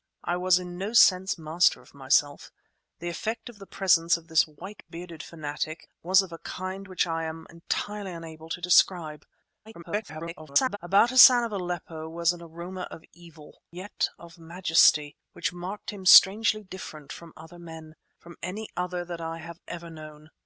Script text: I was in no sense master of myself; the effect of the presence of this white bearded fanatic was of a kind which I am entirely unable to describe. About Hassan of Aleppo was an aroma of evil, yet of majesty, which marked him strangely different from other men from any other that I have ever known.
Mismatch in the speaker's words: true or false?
true